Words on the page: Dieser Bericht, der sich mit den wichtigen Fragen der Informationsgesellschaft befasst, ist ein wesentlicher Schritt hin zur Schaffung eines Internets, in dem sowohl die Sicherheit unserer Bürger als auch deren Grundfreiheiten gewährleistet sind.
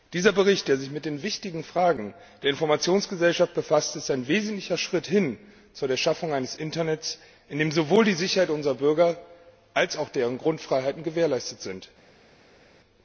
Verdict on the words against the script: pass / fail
pass